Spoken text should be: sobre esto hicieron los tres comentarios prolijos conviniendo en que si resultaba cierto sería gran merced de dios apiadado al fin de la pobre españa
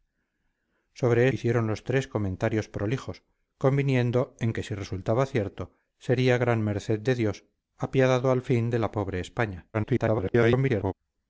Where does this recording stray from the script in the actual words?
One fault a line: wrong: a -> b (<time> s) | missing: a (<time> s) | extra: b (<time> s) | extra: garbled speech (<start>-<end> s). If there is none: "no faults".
missing: esto (1.3 s)
extra: garbled speech (9.7-10.9 s)